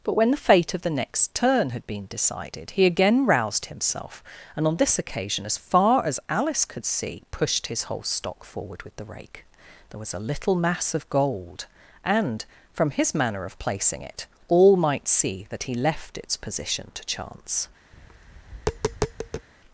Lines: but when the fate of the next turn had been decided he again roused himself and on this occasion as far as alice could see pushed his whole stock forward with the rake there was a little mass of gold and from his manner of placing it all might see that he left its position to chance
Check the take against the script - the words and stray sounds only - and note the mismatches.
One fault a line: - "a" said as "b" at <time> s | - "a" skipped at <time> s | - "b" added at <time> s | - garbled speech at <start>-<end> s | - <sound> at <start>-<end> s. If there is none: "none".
- tap at 17.9-19.5 s